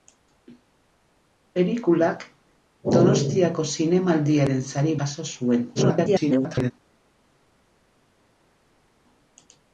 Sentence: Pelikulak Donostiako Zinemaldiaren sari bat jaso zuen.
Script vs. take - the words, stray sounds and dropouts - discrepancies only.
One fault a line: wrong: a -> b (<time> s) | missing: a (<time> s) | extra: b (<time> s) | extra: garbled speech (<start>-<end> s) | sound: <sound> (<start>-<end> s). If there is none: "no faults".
missing: bat (5.0 s)
extra: garbled speech (5.7-6.7 s)